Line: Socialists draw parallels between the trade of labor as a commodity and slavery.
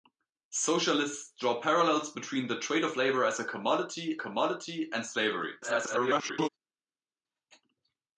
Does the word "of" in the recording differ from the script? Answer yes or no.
no